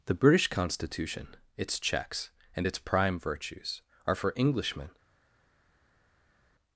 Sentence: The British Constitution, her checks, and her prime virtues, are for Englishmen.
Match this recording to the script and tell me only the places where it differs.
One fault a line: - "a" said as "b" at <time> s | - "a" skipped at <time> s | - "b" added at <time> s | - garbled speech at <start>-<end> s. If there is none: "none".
- "her" said as "its" at 1.6 s
- "her" said as "its" at 2.6 s